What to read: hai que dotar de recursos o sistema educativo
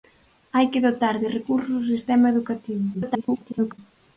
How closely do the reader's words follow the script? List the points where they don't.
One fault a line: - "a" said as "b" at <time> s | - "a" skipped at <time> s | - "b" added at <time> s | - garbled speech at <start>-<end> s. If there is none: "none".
- garbled speech at 2.9-3.8 s